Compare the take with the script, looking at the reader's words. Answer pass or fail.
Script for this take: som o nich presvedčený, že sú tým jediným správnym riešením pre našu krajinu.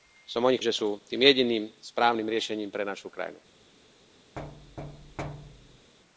fail